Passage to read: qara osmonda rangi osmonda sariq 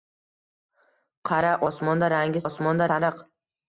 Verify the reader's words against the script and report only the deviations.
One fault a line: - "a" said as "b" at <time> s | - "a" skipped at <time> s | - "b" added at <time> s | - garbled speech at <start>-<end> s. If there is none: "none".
none